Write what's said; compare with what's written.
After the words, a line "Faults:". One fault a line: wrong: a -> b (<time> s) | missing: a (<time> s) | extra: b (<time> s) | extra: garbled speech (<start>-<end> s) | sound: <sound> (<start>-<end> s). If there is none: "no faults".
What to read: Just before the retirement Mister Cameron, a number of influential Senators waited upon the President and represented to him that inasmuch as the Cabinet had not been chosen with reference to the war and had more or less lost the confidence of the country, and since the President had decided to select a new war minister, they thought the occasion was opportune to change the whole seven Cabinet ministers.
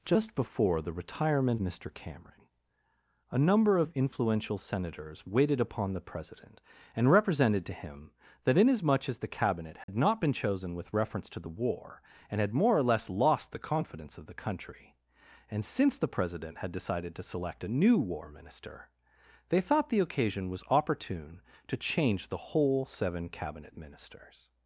Just before the retirement Mister Cameron, a number of influential Senators waited upon the President and represented to him that inasmuch as the Cabinet had not been chosen with reference to the war and had more or less lost the confidence of the country, and since the President had decided to select a new war minister, they thought the occasion was opportune to change the whole seven Cabinet ministers.
Faults:
sound: dropout (9.8-9.9 s)